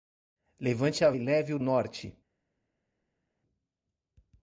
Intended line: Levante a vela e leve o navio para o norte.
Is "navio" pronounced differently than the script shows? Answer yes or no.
yes